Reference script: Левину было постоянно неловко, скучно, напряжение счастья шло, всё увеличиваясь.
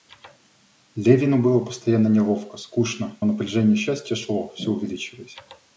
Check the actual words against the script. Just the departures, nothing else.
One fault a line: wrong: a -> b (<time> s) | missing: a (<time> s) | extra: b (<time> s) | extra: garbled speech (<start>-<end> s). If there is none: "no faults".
no faults